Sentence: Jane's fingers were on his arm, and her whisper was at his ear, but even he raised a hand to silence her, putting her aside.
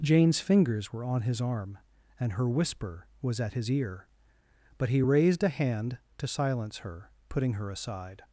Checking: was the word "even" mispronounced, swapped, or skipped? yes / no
yes